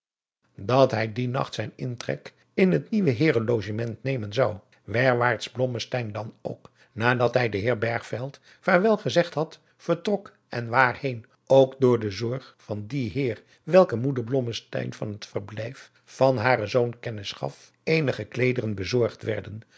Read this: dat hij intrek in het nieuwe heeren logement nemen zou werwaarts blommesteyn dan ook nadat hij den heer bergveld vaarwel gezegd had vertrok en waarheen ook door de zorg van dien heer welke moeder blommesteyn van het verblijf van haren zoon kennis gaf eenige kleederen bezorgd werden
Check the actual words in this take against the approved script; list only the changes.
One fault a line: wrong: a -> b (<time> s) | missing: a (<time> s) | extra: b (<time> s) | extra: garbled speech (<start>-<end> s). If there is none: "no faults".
extra: dien nacht zijn (1.1 s)